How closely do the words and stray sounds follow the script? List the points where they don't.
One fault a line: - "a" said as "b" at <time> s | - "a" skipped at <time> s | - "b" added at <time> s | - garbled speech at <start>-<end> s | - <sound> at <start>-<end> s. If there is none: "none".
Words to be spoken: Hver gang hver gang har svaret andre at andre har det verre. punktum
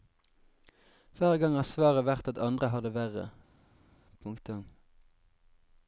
- "hver gang" skipped at 1.6 s
- "andre" said as "vært" at 2.1 s